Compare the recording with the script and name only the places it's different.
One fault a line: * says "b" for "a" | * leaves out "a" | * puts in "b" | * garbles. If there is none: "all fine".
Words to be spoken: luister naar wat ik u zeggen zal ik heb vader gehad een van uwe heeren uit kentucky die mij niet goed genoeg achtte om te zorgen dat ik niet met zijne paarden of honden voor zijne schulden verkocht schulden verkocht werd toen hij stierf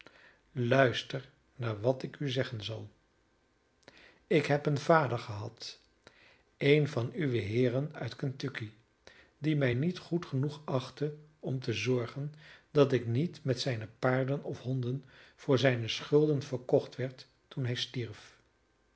* puts in "een"
* leaves out "schulden verkocht"